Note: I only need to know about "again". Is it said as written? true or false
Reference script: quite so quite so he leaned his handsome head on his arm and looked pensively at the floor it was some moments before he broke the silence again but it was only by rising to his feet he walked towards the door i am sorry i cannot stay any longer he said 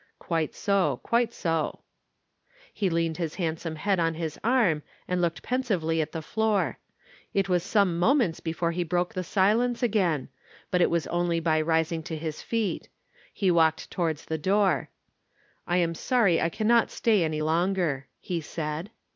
true